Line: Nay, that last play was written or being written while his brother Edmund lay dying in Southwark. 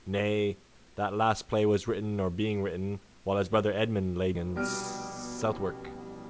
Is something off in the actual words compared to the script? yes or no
yes